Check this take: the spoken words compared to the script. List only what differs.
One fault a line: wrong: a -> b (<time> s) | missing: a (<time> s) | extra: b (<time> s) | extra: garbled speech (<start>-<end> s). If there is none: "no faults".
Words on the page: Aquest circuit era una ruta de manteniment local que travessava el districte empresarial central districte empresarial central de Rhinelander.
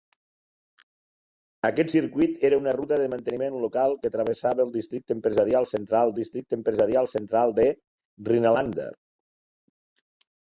no faults